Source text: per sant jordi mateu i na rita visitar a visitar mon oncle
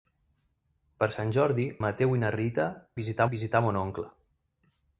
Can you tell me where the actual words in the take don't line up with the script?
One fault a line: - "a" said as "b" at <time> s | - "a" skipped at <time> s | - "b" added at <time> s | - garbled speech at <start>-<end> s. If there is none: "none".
none